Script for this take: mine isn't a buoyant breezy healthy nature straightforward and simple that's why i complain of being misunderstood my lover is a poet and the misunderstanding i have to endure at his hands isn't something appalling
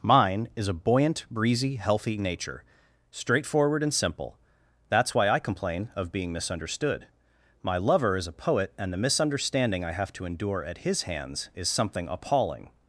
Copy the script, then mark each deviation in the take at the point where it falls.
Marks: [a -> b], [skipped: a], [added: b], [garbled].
mine [isn't -> is] a buoyant breezy healthy nature straightforward and simple that's why i complain of being misunderstood my lover is a poet and the misunderstanding i have to endure at his hands [isn't -> is] something appalling